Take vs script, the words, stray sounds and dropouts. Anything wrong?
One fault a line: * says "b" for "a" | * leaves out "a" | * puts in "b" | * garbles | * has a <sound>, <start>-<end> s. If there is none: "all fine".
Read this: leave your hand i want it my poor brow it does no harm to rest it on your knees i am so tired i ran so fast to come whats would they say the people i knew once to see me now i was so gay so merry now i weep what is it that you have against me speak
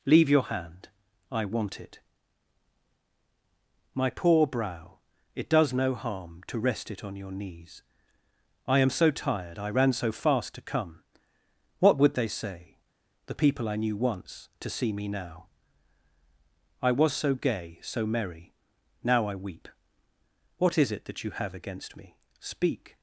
* says "what" for "whats"